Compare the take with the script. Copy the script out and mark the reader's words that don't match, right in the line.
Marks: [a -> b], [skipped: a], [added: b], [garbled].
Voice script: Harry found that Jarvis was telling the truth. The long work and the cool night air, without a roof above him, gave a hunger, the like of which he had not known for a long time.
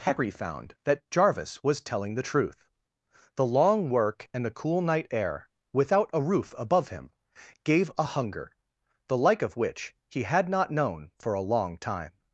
Harry found that Jarvis was telling the truth. The long work and the cool night air, without a roof above him, gave a hunger, the like of which he had not known for a long time.